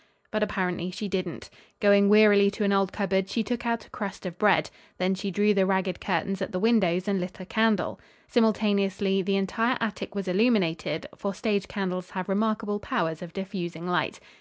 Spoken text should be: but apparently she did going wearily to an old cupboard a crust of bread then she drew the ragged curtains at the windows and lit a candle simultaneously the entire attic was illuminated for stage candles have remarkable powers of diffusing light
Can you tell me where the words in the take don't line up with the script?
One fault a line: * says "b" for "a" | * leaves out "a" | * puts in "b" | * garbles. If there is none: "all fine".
* says "didn't" for "did"
* puts in "she took out"